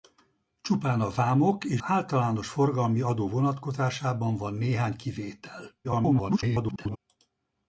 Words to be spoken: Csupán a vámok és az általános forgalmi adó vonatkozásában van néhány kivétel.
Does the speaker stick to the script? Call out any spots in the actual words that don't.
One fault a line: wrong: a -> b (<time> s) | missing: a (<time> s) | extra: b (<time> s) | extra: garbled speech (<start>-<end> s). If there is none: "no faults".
missing: az (1.8 s)
extra: garbled speech (5.8-7.0 s)